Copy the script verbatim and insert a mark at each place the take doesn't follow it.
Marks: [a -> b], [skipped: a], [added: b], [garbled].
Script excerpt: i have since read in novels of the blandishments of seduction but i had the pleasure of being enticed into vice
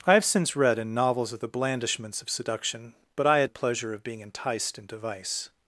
i have since read in novels of the blandishments of seduction but i had the pleasure of being enticed into vice